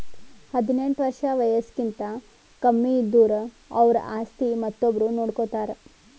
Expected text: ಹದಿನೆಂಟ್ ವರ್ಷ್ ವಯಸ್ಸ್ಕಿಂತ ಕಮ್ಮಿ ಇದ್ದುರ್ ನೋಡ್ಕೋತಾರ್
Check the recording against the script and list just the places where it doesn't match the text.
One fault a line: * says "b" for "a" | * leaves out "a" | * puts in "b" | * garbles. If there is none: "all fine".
* puts in "ಅವ್ರ ಆಸ್ತಿ ಮತ್ತೊಬ್ರು"